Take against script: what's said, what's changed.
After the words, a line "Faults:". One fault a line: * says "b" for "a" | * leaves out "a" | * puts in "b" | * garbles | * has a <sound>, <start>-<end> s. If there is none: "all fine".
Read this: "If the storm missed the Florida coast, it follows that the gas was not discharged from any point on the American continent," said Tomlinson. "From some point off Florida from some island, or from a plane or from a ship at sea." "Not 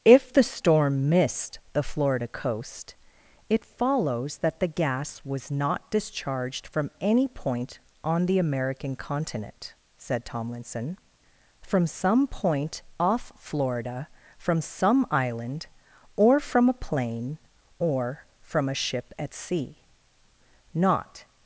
"If the storm missed the Florida coast, it follows that the gas was not discharged from any point on the American continent," said Tomlinson. "From some point off Florida from some island, or from a plane or from a ship at sea." "Not
Faults:
all fine